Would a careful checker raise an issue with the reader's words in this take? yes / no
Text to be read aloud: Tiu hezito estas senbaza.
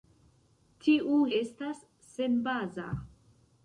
yes